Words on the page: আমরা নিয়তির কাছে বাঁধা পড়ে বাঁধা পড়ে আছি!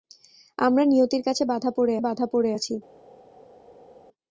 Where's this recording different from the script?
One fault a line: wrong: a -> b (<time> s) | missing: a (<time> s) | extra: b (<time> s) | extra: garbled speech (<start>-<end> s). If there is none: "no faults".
no faults